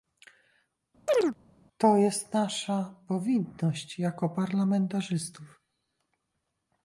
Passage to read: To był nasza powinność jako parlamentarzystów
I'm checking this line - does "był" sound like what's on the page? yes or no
no